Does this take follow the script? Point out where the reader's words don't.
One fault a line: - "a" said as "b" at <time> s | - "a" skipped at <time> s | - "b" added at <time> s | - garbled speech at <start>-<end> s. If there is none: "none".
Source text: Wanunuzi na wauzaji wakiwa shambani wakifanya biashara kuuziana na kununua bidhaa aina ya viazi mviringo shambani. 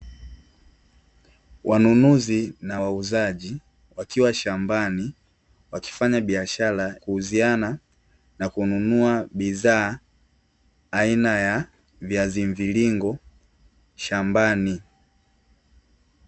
none